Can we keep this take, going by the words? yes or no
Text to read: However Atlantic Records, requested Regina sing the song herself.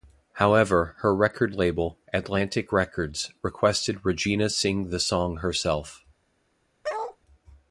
no